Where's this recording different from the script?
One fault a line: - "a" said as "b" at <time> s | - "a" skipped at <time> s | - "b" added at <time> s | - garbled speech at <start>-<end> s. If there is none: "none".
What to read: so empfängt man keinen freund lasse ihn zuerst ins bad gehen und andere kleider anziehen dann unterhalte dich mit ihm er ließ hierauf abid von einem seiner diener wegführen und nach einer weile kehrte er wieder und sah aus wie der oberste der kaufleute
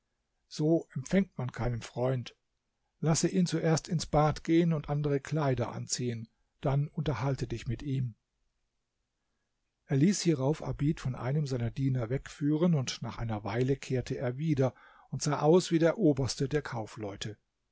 none